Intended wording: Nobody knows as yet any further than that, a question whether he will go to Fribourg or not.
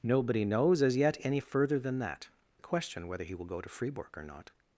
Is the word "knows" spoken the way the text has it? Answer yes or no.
yes